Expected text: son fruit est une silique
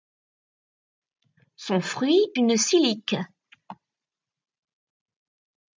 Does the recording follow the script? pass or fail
fail